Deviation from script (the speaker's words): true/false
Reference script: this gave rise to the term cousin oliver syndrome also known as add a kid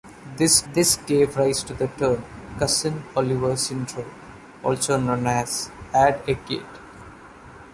true